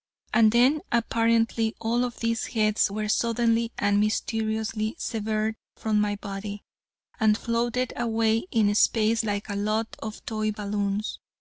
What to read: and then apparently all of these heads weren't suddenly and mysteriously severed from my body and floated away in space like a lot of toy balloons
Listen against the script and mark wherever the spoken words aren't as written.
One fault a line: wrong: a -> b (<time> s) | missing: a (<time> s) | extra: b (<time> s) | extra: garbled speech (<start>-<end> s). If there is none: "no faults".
wrong: weren't -> were (2.9 s)